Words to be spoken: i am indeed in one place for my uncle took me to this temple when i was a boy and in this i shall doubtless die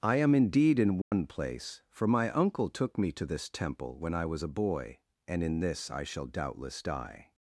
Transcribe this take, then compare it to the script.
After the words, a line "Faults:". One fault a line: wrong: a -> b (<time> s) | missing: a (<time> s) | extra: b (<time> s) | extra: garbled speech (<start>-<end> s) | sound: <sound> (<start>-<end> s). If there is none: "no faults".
i am indeed in one place for my uncle took me to this temple when i was a boy and in this i shall doubtless die
Faults:
sound: dropout (1.0-1.1 s)